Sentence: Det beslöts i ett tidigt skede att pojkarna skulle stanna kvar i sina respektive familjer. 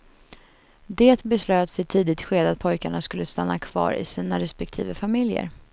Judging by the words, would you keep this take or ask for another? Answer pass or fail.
pass